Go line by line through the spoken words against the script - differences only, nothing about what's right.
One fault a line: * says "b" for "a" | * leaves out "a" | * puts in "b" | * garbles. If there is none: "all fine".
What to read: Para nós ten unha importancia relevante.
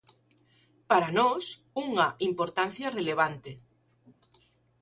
* leaves out "ten"